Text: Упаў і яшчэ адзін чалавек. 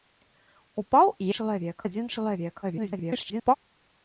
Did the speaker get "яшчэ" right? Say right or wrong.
wrong